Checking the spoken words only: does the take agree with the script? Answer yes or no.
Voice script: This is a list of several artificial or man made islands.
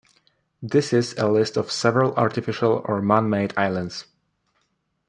yes